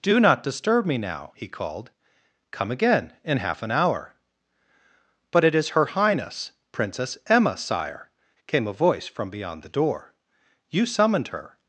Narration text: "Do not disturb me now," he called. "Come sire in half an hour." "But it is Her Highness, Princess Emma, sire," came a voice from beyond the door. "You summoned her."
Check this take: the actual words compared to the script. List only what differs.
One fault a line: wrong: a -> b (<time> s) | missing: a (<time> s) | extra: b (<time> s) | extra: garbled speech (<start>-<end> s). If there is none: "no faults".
wrong: sire -> again (2.7 s)